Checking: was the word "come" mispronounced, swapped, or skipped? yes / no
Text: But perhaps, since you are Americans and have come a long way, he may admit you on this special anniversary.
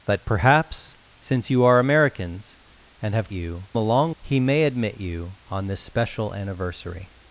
yes